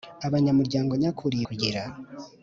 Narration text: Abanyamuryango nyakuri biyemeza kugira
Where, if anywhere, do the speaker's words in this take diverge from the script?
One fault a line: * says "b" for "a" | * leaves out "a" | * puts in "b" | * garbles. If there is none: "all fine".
* leaves out "biyemeza"